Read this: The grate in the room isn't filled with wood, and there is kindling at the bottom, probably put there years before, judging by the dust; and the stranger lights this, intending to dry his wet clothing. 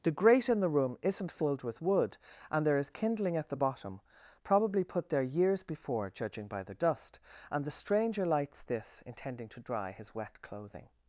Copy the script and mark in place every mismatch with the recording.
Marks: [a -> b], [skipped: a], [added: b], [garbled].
The grate in the room isn't filled with wood, and there is kindling at the bottom, probably put there years before, judging by the dust; and the stranger lights this, intending to dry his wet clothing.